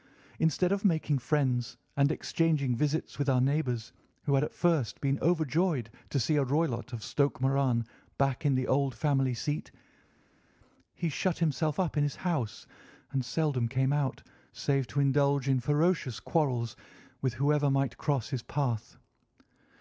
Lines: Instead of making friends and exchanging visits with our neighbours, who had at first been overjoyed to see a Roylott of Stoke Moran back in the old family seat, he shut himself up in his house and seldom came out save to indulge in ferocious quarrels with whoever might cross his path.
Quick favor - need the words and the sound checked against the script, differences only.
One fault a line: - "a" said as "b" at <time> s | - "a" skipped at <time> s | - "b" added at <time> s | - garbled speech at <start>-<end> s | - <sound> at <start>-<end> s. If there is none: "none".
none